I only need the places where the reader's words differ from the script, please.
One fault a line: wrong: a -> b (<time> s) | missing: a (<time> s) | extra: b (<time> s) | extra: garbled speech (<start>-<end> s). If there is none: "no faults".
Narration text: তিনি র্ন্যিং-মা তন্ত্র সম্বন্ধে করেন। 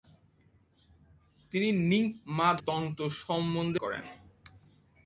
no faults